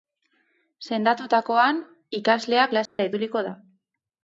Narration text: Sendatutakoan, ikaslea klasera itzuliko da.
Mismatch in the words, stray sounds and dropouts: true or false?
true